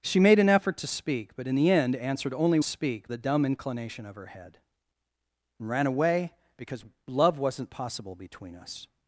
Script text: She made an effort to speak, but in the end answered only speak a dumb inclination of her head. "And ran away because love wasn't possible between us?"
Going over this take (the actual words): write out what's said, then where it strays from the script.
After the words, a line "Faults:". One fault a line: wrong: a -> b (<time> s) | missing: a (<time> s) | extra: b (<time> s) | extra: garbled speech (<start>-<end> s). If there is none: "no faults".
She made an effort to speak, but in the end answered only speak a dumb inclination of her head. "And ran away because love wasn't possible between us?"
Faults:
no faults